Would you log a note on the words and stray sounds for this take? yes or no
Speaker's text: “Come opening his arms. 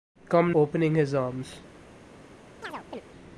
yes